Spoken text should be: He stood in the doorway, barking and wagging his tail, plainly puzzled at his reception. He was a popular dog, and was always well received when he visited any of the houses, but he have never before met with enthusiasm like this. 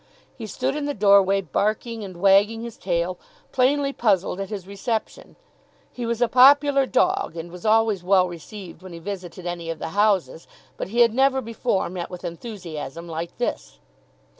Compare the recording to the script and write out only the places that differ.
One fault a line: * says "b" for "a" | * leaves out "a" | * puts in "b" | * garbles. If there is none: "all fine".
* says "had" for "have"